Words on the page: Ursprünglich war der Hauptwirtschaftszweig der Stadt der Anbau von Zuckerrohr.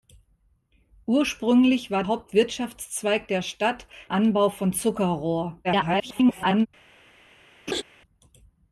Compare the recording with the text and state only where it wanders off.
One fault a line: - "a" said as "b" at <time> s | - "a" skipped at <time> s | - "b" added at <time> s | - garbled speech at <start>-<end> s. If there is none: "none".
- "der" skipped at 2.0 s
- "der" skipped at 3.9 s
- garbled speech at 5.6-6.7 s